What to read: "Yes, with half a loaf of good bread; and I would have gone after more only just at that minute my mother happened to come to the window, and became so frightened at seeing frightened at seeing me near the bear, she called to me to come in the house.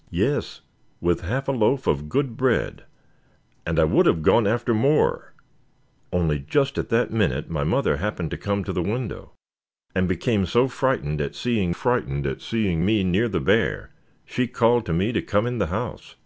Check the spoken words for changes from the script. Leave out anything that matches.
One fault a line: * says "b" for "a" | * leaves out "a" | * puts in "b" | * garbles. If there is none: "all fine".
all fine